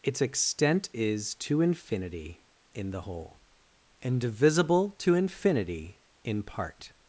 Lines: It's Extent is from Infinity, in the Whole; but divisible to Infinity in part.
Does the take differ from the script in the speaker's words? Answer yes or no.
yes